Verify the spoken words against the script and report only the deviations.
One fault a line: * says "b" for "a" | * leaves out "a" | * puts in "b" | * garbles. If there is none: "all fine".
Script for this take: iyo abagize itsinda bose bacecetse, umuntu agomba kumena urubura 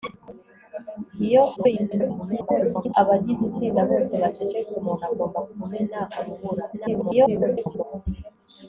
* garbles
* garbles